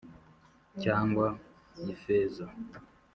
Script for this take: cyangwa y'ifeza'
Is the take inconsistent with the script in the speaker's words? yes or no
no